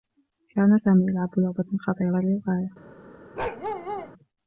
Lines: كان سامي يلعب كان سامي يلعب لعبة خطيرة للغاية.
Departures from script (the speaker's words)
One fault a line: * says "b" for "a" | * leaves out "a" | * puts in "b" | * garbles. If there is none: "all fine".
* leaves out "كان سامي يلعب"